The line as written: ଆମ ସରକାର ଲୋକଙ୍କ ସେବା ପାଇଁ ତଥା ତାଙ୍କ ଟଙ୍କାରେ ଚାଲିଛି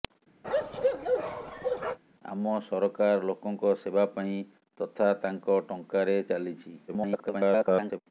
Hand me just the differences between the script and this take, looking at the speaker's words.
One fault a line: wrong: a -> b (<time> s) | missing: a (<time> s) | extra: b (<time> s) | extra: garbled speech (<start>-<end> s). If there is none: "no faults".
extra: garbled speech (6.9-8.0 s)